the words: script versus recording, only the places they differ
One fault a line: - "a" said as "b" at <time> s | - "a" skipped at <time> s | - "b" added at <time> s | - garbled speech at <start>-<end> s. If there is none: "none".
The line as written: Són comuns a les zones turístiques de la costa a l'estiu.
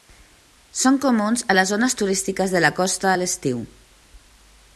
none